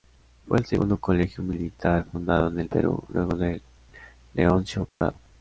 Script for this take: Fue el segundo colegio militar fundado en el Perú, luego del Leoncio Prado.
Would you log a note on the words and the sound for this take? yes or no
yes